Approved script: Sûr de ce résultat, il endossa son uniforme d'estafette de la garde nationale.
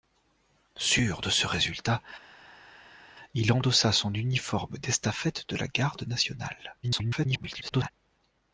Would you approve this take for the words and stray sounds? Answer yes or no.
no